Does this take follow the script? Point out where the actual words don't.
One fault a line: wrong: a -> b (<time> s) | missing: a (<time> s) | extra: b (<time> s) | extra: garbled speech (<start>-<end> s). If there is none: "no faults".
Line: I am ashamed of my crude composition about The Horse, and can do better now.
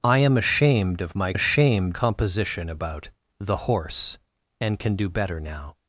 wrong: crude -> ashamed (1.3 s)